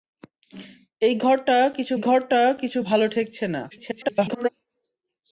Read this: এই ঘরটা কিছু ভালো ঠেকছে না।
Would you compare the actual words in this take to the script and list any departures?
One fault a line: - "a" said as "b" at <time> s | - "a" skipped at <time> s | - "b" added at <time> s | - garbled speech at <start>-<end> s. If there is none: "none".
- "ঘরটা কিছু" added at 2.0 s
- garbled speech at 3.7-4.5 s